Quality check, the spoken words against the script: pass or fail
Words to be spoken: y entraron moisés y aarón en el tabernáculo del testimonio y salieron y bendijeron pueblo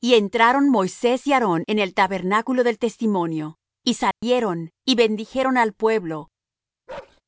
fail